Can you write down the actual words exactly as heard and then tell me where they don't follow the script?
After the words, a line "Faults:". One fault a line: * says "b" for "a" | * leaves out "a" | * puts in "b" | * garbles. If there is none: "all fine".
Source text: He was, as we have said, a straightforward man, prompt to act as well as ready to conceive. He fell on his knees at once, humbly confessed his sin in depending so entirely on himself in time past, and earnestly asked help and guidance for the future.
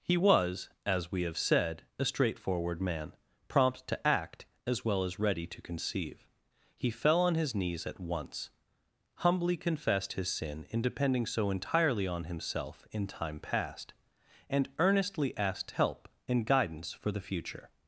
He was, as we have said, a straightforward man, prompt to act as well as ready to conceive. He fell on his knees at once, humbly confessed his sin in depending so entirely on himself in time past, and earnestly asked help and guidance for the future.
Faults:
all fine